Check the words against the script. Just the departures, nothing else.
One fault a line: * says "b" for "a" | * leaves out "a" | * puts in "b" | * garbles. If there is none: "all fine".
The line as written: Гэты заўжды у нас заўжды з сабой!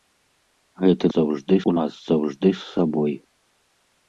all fine